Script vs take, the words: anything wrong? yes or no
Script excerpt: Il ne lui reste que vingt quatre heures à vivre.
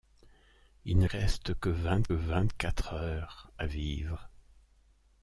yes